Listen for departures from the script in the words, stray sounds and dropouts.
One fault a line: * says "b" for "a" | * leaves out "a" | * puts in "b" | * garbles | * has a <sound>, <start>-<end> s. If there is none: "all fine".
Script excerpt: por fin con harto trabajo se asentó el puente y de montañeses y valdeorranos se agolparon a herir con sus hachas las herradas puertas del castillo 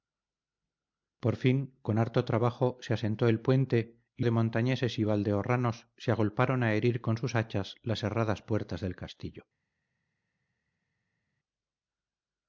all fine